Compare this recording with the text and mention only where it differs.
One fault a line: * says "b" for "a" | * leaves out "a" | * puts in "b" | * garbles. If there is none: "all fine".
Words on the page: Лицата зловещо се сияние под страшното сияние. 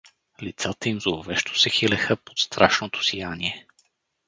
* puts in "им"
* says "хилеха" for "сияние"